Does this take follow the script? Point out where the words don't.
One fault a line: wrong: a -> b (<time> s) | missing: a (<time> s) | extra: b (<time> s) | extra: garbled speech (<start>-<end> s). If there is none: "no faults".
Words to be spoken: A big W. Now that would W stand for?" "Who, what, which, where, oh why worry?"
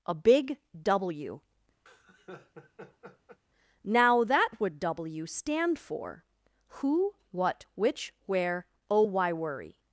no faults